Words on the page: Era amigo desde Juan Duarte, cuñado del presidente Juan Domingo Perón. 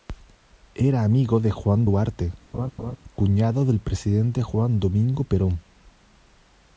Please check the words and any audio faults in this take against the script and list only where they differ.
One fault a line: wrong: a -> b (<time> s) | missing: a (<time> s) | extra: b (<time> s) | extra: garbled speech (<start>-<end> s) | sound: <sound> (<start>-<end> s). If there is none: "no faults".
wrong: desde -> de (1.4 s)
sound: laugh (2.5-3.0 s)